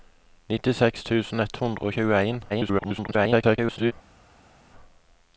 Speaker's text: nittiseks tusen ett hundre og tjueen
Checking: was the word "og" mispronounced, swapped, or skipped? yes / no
no